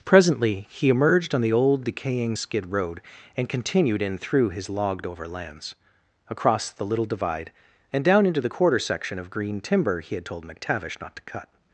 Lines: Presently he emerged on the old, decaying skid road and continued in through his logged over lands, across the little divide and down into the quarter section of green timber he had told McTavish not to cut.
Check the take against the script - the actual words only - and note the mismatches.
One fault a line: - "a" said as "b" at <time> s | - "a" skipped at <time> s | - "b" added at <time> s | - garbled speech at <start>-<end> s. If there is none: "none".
none